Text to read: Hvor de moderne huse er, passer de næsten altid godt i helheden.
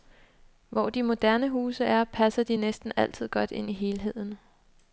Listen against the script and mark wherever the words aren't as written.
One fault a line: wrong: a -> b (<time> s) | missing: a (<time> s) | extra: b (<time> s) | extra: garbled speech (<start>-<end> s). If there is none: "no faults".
extra: ind (3.5 s)